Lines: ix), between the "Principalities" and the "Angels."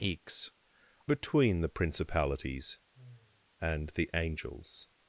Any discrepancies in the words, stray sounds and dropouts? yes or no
yes